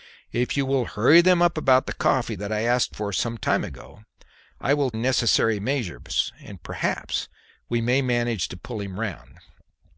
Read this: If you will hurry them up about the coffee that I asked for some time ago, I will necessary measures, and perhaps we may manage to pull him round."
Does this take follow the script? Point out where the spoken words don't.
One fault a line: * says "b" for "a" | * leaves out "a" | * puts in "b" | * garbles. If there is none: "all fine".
all fine